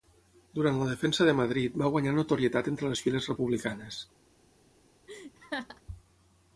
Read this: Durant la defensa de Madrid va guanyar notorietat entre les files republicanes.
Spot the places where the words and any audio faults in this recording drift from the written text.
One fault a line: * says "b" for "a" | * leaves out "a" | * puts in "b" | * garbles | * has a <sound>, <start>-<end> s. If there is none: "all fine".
* has a laugh, 5.1-5.8 s